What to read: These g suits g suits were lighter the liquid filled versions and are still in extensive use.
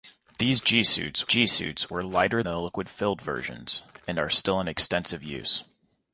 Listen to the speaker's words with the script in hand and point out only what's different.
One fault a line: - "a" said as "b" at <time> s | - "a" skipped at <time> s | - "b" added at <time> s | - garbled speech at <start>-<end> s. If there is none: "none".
none